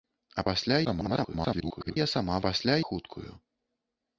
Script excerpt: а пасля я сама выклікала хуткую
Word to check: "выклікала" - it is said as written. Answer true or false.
false